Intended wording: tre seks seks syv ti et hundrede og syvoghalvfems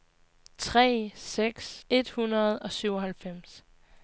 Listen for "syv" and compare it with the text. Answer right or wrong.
wrong